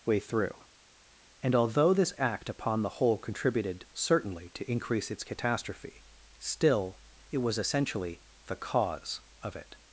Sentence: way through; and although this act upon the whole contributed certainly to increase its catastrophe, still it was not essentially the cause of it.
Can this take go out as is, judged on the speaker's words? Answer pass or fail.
fail